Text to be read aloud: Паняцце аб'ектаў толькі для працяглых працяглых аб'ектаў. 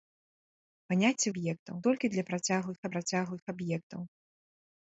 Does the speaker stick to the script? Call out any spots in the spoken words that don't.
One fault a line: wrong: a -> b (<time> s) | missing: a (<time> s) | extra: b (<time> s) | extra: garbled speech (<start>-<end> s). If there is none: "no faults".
no faults